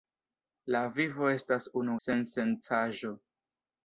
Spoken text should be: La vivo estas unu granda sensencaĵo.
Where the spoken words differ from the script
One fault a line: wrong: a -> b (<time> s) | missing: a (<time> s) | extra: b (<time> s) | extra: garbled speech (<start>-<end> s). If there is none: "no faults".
missing: granda (2.0 s)